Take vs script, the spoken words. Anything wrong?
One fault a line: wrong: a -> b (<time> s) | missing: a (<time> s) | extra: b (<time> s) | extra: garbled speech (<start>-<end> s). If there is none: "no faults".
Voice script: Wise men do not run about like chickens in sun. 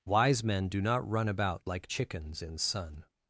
no faults